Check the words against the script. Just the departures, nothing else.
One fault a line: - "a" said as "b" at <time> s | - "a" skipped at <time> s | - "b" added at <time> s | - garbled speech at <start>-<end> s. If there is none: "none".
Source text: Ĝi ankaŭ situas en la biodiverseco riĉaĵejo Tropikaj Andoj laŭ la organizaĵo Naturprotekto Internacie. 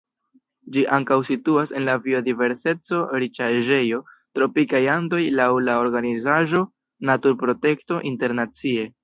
none